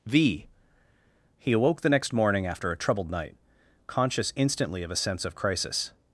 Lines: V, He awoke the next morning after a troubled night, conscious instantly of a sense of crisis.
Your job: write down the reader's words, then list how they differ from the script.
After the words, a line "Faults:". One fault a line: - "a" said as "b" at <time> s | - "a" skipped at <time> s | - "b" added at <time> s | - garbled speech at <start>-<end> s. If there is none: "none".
V, He awoke the next morning after a troubled night, conscious instantly of a sense of crisis.
Faults:
none